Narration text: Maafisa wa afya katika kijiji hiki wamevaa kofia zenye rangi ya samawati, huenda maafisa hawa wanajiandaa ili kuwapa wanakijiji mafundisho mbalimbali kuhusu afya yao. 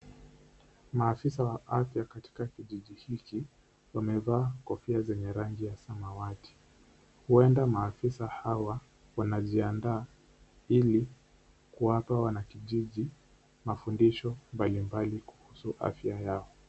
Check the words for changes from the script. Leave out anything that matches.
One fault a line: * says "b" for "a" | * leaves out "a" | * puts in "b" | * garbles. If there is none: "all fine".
all fine